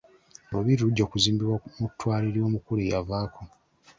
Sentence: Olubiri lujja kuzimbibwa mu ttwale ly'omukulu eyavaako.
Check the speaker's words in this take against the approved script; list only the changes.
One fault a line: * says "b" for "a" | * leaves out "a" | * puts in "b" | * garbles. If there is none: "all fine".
all fine